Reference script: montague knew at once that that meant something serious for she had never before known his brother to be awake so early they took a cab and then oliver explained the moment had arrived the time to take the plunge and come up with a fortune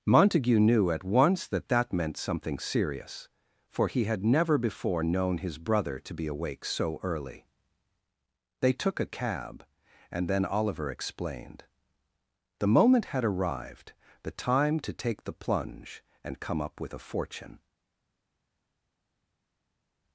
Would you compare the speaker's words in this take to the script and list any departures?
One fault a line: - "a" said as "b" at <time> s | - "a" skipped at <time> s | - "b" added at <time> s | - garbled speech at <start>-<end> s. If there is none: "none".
- "she" said as "he" at 3.9 s